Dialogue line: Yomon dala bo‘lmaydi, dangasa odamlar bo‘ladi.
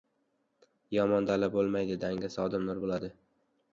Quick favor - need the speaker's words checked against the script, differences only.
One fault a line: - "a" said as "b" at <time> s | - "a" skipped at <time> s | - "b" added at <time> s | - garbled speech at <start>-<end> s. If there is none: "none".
none